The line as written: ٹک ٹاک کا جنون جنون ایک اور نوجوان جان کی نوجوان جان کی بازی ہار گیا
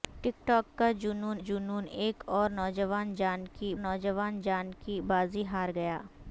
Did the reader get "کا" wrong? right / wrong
right